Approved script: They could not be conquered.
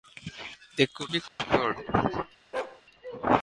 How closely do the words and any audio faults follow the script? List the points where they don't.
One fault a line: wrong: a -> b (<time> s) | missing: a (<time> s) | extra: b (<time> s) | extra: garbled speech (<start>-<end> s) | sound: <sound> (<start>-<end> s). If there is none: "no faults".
missing: not (1.1 s)
sound: dropout (1.3-1.4 s)
sound: bark (2.5-2.8 s)